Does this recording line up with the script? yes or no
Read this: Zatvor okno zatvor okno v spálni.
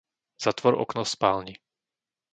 no